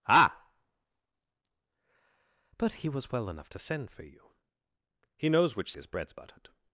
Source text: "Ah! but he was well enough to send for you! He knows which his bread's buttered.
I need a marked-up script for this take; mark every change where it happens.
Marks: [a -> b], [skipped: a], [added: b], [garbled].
"Ah! but he was well enough to send for you! He knows which his bread's buttered.